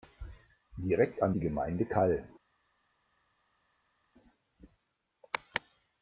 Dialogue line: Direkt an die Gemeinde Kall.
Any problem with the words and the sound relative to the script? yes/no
no